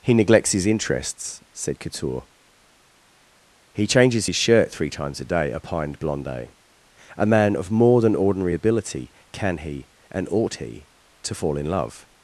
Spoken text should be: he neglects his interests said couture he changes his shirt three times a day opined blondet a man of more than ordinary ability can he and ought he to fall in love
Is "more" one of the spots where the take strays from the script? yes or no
no